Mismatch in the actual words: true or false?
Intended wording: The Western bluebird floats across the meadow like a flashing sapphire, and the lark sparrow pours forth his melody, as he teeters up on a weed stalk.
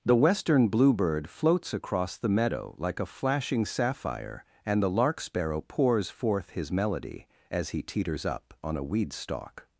false